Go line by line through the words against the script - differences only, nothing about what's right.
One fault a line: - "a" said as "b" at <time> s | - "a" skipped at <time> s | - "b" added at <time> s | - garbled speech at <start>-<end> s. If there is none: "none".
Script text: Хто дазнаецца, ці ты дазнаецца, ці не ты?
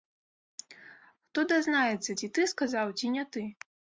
- "дазнаецца" said as "сказаў" at 2.5 s